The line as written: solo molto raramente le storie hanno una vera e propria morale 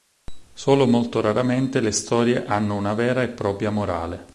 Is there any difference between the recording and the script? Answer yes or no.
no